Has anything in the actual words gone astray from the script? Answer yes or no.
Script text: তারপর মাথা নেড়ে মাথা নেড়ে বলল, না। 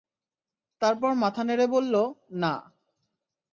yes